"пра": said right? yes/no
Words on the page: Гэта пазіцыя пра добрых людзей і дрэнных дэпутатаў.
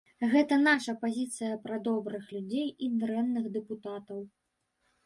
yes